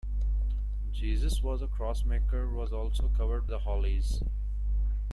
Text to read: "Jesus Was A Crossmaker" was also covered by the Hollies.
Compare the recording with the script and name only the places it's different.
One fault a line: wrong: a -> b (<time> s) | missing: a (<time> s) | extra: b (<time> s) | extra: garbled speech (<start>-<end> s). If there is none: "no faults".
missing: by (3.5 s)